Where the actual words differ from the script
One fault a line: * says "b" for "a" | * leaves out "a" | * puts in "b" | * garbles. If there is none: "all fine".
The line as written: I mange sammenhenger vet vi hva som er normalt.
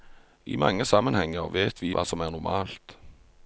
all fine